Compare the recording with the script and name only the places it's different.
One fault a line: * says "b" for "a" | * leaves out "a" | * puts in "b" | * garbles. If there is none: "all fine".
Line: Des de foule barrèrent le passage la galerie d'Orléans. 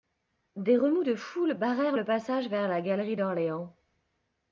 * puts in "remous"
* puts in "vers"